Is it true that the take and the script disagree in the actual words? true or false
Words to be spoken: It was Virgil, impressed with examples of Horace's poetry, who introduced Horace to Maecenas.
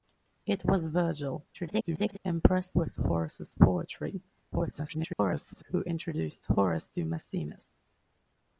true